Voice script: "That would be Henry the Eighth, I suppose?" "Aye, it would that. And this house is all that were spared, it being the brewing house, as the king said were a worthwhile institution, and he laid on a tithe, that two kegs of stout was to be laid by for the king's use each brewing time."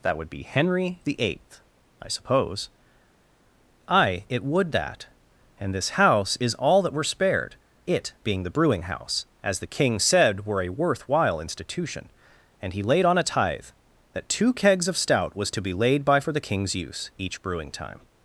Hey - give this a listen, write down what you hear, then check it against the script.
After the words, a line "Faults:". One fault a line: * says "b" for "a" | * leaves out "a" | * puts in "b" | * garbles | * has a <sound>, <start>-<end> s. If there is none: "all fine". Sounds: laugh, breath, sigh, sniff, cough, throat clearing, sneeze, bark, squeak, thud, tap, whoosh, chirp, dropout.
"That would be Henry the Eighth, I suppose?" "Aye, it would that. And this house is all that were spared, it being the brewing house, as the king said were a worthwhile institution, and he laid on a tithe, that two kegs of stout was to be laid by for the king's use each brewing time."
Faults:
all fine